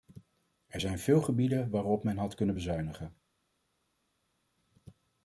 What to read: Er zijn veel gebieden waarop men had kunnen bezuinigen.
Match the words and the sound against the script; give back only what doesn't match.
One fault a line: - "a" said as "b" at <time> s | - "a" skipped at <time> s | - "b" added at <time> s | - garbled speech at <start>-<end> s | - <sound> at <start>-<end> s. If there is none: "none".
none